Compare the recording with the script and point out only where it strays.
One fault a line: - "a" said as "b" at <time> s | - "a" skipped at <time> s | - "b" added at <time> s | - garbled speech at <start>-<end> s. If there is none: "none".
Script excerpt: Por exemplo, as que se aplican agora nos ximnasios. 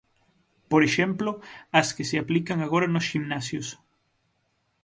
none